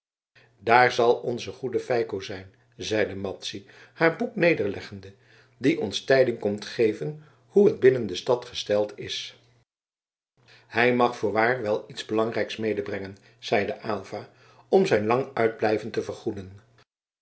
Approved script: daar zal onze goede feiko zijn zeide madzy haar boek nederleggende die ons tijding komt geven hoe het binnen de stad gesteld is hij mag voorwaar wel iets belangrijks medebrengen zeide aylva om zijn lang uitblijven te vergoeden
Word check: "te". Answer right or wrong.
right